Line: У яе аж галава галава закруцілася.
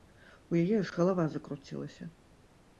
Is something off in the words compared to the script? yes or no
yes